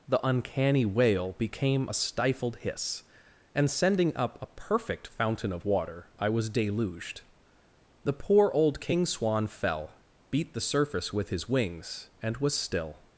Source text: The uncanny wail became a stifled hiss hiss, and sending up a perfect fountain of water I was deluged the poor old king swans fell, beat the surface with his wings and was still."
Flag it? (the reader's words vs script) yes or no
yes